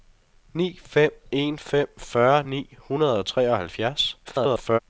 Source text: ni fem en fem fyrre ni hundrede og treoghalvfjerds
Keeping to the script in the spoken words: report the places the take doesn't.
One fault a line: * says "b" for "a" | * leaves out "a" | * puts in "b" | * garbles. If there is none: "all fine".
* garbles